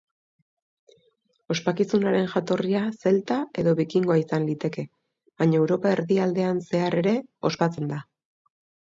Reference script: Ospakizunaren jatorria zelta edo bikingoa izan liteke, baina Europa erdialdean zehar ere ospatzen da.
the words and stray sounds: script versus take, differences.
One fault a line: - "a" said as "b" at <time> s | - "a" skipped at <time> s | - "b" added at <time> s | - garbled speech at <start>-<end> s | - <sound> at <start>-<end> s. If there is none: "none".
none